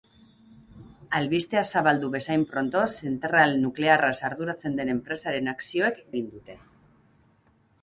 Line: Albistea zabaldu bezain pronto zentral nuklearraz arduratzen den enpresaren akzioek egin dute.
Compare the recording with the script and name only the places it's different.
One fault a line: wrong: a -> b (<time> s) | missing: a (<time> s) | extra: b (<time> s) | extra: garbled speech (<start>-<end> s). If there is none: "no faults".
no faults